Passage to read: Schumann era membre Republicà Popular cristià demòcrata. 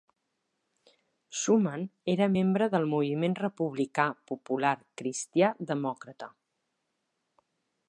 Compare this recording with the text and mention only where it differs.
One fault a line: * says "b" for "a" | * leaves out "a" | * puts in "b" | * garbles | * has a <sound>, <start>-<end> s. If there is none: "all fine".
* puts in "del Moviment"